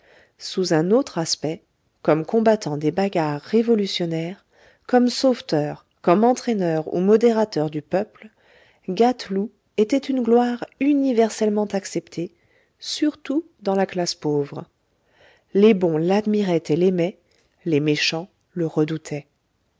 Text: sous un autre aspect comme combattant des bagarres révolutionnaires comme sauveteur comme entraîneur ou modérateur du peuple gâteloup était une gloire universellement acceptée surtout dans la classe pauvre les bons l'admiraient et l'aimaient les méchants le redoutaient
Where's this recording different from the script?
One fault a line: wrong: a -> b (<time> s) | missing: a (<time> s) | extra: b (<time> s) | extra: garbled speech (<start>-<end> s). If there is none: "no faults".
no faults